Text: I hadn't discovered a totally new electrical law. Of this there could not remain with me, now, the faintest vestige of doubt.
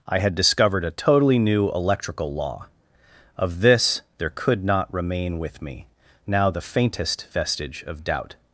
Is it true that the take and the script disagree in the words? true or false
true